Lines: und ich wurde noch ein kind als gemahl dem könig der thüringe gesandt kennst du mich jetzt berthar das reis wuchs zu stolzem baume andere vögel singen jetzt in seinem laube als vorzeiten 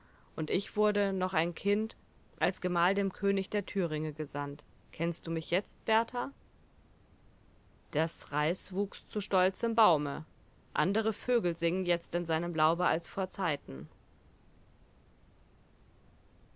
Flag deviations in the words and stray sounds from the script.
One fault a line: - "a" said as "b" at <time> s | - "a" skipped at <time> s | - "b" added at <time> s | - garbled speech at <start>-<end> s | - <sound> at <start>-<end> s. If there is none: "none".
none